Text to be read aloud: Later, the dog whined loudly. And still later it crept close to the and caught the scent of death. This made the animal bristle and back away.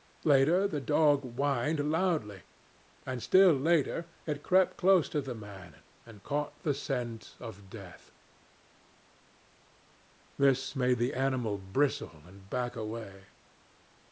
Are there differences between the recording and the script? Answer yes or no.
yes